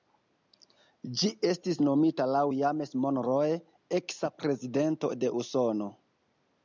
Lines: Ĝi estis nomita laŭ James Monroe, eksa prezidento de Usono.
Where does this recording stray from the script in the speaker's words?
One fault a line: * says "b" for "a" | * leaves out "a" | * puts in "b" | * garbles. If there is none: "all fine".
all fine